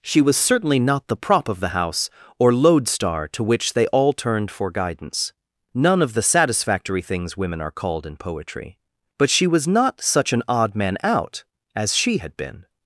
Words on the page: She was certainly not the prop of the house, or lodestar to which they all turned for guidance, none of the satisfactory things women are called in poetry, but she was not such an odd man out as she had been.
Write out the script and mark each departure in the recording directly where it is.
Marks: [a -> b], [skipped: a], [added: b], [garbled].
She was certainly not the prop of the house, or lodestar to which they all turned for guidance, none of the satisfactory things women are called in poetry, but she was not such an odd man out as she had been.